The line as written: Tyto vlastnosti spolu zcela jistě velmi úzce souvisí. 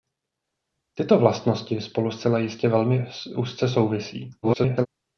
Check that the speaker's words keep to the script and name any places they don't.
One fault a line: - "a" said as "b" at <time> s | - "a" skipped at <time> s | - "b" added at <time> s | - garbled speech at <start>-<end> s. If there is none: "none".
- garbled speech at 4.4-4.9 s